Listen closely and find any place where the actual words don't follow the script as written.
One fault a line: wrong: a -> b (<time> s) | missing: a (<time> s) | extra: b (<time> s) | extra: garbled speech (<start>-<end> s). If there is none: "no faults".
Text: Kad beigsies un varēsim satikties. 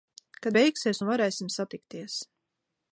no faults